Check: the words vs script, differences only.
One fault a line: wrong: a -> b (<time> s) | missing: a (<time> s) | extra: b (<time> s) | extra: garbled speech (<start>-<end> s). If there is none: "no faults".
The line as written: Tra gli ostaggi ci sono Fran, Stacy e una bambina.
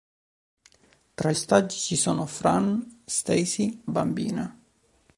missing: gli (1.3 s)
missing: e una (3.8 s)